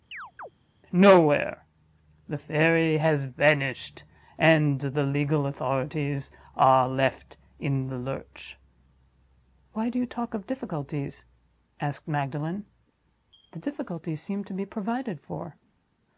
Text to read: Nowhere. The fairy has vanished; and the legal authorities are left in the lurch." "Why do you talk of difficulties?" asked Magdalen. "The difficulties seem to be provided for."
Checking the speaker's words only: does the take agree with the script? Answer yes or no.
yes